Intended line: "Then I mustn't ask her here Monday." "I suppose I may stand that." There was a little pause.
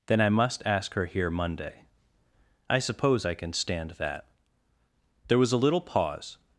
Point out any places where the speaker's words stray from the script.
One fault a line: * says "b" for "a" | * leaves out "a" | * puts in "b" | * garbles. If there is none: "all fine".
* says "must" for "mustn't"
* says "can" for "may"